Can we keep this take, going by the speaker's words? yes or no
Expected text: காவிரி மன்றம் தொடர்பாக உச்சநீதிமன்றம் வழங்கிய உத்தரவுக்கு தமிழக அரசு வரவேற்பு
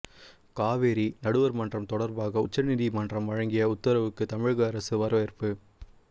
no